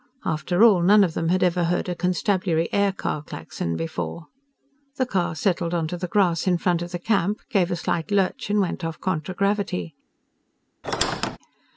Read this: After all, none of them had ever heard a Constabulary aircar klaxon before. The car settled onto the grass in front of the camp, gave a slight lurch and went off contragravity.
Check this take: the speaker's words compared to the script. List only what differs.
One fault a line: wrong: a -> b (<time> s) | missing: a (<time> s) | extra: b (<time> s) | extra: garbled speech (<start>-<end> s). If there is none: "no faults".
no faults